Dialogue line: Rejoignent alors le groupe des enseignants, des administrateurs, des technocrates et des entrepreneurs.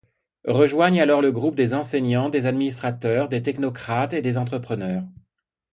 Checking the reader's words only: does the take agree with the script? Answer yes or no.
yes